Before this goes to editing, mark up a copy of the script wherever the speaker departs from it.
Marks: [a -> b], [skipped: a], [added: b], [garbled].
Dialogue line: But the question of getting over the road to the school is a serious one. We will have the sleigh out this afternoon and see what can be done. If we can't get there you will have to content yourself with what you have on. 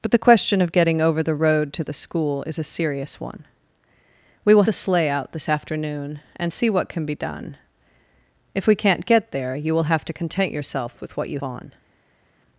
But the question of getting over the road to the school is a serious one. We will [skipped: have] the sleigh out this afternoon and see what can be done. If we can't get there you will have to content yourself with what you [skipped: have] on.